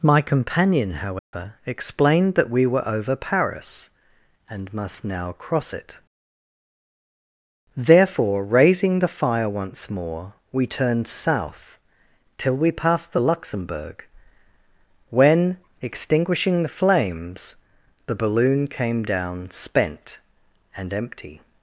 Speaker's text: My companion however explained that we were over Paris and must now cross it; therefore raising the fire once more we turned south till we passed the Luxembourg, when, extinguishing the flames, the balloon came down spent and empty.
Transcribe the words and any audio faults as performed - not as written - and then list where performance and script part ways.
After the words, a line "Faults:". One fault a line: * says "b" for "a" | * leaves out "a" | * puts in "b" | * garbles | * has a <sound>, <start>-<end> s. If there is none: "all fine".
My companion however explained that we were over Paris and must now cross it; therefore raising the fire once more we turned south till we passed the Luxembourg, when, extinguishing the flames, the balloon came down spent and empty.
Faults:
* has a dropout, 1.2-1.3 s